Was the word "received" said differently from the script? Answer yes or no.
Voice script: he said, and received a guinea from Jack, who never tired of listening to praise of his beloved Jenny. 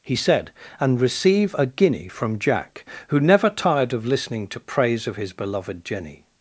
yes